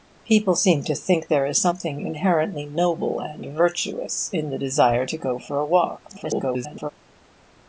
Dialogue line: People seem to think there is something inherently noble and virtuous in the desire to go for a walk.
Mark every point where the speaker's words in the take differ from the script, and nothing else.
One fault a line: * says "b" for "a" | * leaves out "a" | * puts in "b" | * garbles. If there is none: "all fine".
* garbles